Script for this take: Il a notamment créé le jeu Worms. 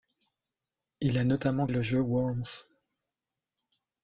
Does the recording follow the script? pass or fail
fail